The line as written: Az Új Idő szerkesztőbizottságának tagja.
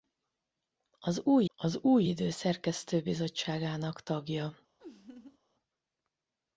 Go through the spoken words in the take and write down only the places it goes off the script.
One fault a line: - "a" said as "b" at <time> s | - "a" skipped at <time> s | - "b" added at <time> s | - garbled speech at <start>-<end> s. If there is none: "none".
- "az Új" added at 1.6 s